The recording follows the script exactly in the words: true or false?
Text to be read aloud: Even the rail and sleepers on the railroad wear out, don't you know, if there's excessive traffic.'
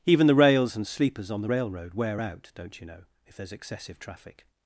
false